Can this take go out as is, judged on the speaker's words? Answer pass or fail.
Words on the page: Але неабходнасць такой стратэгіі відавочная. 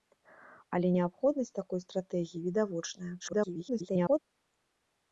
fail